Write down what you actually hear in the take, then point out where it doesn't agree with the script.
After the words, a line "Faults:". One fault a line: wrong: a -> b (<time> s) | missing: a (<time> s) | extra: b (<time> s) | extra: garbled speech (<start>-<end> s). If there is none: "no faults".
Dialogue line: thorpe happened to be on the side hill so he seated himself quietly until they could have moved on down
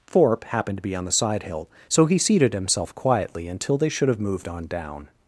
thorpe happened to be on the side hill so he seated himself quietly until they should have moved on down
Faults:
wrong: could -> should (3.9 s)